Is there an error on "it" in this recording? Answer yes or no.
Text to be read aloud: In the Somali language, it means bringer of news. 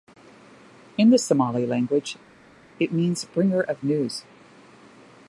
no